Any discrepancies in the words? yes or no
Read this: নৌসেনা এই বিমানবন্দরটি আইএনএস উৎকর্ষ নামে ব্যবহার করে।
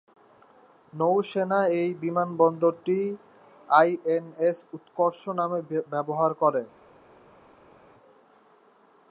no